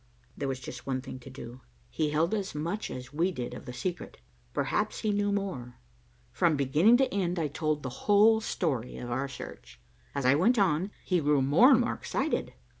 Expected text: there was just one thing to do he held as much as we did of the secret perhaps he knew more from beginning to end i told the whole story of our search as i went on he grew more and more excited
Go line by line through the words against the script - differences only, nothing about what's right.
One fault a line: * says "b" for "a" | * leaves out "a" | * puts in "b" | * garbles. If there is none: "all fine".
all fine